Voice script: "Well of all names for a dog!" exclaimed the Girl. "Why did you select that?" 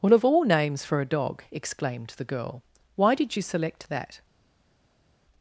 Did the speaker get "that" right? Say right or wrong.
right